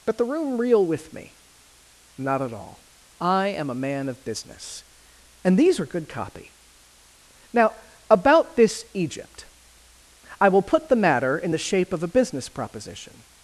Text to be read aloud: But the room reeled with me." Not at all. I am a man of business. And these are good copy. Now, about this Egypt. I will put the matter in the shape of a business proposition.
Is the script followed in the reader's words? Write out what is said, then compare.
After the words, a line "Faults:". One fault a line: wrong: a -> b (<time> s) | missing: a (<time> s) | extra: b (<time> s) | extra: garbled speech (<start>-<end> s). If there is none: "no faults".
But the room reel with me." Not at all. I am a man of business. And these are good copy. Now, about this Egypt. I will put the matter in the shape of a business proposition.
Faults:
wrong: reeled -> reel (0.6 s)